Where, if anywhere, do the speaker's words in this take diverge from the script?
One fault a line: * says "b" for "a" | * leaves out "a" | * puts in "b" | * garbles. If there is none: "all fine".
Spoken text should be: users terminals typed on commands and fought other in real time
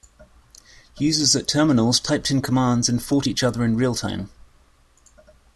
* puts in "at"
* says "in" for "on"
* puts in "each"